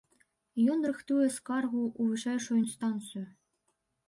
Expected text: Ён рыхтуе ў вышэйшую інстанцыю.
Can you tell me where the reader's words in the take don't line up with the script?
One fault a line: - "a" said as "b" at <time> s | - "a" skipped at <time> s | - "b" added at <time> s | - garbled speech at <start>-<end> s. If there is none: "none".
- "скаргу" added at 1.4 s